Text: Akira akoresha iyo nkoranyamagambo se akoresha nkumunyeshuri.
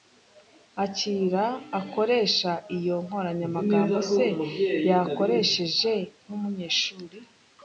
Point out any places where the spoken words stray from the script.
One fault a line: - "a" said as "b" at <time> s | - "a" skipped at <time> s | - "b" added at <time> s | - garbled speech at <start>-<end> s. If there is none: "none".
- "akoresha" said as "yakoresheje" at 4.9 s